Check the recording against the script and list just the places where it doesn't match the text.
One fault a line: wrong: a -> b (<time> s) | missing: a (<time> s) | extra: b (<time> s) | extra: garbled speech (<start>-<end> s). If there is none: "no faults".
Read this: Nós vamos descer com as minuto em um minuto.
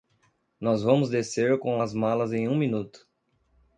wrong: minuto -> malas (1.9 s)